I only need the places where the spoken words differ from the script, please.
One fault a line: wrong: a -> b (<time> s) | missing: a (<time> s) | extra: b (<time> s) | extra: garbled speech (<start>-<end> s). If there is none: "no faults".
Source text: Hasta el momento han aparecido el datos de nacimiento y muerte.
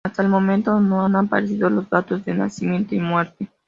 extra: no (0.8 s)
wrong: el -> los (1.7 s)